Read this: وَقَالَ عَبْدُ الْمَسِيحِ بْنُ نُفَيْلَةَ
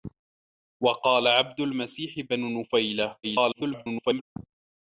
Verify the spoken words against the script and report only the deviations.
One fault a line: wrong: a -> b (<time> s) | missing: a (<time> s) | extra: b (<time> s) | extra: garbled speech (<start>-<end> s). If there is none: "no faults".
extra: garbled speech (3.2-4.2 s)